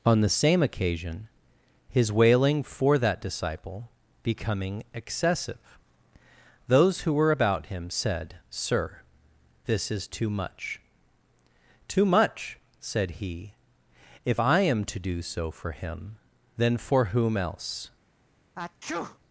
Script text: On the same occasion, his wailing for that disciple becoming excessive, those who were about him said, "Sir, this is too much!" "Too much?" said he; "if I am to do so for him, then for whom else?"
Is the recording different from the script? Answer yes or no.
no